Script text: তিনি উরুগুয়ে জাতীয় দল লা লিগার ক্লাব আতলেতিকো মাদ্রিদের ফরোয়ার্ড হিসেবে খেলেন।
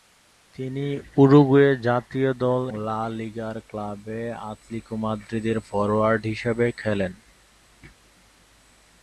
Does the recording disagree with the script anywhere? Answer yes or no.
no